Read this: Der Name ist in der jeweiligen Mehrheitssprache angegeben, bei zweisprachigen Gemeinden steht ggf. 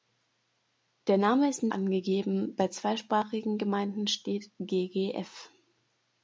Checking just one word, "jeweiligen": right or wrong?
wrong